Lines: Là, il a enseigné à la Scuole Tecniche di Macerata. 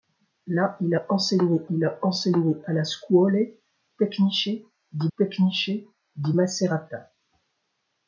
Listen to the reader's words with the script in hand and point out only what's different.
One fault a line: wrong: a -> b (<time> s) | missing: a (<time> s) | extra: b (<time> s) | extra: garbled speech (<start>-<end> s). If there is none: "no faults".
extra: il a enseigné (1.7 s)
extra: Tecniche di (5.2 s)